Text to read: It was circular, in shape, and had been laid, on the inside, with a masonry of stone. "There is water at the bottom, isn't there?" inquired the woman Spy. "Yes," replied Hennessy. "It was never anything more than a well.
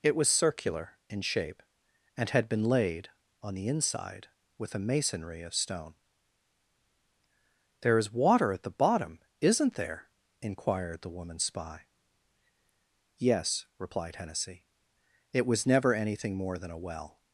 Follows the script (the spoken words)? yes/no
yes